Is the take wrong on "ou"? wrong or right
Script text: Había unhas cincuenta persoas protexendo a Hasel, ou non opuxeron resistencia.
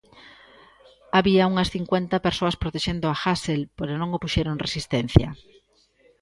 wrong